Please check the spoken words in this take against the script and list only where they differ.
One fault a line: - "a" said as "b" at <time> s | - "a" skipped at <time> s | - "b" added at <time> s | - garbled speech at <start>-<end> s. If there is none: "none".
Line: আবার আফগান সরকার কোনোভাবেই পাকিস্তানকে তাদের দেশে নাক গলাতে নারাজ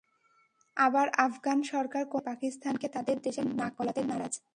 none